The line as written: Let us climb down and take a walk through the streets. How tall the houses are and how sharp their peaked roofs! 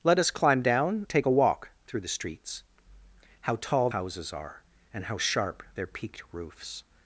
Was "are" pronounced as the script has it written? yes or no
yes